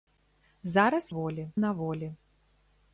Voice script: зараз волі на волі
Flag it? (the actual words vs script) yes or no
no